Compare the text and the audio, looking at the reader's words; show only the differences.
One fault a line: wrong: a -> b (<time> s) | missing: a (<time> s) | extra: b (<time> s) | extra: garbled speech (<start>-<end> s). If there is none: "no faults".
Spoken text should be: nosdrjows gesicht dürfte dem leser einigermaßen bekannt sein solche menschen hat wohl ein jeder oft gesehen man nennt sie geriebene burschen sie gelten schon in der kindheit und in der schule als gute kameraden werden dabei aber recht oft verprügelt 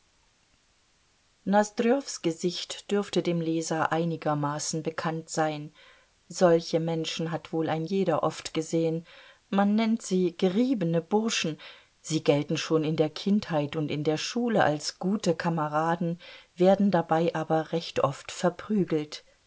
no faults